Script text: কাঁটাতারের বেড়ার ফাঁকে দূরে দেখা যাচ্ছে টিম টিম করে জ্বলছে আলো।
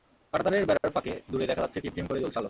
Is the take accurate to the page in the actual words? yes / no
yes